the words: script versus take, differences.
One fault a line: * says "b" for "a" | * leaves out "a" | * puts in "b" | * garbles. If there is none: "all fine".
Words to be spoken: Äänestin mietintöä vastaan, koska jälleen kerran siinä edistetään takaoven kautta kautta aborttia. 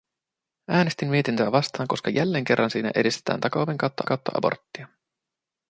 all fine